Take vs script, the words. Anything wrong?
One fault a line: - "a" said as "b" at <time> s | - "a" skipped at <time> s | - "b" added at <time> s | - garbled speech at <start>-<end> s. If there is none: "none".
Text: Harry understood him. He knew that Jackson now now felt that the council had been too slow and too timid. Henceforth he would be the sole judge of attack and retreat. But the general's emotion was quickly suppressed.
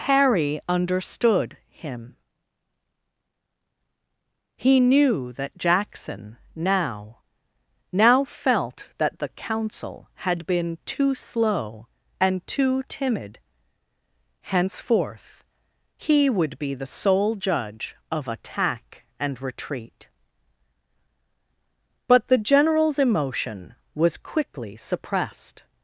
none